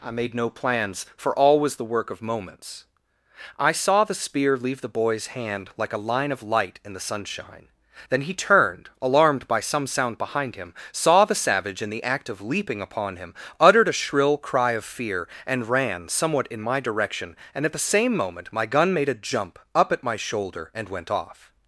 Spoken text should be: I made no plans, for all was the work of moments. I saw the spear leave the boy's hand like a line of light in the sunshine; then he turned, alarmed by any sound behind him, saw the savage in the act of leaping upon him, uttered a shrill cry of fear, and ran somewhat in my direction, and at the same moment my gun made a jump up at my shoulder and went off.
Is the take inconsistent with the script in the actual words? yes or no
yes